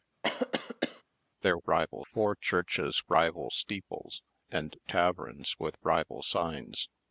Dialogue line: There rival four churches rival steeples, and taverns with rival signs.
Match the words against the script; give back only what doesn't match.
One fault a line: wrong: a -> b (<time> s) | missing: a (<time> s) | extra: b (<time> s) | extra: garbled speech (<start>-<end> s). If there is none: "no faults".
no faults